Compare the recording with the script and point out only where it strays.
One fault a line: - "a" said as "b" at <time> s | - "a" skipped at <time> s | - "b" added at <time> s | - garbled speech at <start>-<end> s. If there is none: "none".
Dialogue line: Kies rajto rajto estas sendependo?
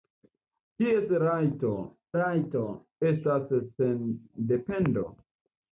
none